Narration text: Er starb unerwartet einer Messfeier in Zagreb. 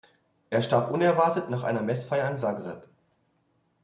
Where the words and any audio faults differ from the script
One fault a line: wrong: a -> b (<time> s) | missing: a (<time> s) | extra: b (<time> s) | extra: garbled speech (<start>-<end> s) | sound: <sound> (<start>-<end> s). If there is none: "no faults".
extra: nach (1.5 s)